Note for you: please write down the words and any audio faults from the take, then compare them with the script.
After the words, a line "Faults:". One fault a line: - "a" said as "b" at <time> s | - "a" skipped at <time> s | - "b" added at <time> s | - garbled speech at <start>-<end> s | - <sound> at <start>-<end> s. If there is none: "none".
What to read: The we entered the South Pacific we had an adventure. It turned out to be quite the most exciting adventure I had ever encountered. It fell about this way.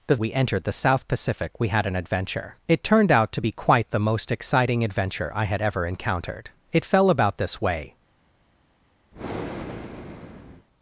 The we entered the South Pacific we had an adventure. It turned out to be quite the most exciting adventure I had ever encountered. It fell about this way.
Faults:
- breath at 9.1-10.7 s